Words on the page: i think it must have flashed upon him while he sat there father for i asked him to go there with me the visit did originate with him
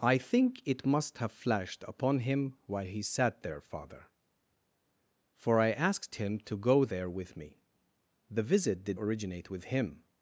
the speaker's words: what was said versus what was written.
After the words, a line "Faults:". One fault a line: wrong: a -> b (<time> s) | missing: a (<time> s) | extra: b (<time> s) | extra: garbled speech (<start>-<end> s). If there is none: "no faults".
i think it must have flashed upon him while he sat there father for i asked him to go there with me the visit did originate with him
Faults:
no faults